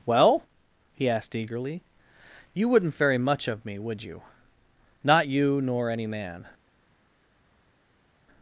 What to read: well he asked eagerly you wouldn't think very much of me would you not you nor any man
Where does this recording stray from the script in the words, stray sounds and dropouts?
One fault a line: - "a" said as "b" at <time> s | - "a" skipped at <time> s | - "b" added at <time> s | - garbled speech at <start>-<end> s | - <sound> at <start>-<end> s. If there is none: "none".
- "think" skipped at 3.0 s